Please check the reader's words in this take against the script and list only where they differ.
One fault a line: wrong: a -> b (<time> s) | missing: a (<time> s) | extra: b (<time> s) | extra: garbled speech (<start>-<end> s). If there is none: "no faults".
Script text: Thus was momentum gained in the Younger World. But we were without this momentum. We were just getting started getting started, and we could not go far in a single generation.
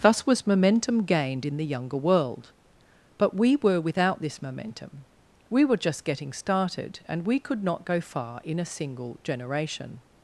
missing: getting started (7.0 s)